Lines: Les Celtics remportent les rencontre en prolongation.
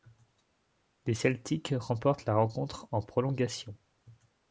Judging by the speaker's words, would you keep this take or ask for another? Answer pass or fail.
fail